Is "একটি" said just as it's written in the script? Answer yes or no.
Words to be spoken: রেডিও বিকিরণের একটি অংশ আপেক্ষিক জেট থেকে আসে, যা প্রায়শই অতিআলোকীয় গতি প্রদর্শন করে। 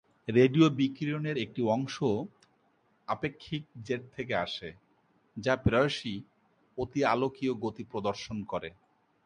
yes